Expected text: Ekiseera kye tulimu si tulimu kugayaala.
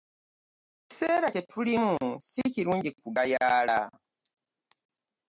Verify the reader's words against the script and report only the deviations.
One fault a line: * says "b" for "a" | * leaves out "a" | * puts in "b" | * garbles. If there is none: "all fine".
* says "kirungi" for "tulimu"